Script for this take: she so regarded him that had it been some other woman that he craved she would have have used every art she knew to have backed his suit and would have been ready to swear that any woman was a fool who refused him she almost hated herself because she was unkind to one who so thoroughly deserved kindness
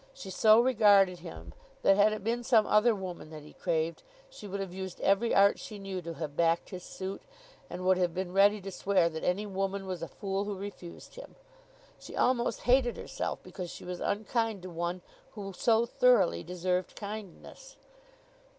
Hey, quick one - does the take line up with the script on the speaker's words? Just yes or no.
no